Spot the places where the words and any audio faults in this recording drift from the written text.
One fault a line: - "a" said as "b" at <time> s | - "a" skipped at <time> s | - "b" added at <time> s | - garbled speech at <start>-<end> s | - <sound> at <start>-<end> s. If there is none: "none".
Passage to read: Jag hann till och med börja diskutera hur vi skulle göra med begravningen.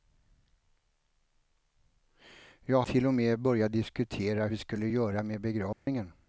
- "hann" skipped at 2.8 s
- "hur" skipped at 4.5 s
- dropout at 5.7-5.9 s